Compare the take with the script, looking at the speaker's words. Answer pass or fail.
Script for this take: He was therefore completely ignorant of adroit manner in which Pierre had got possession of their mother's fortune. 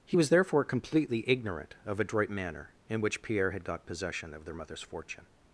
pass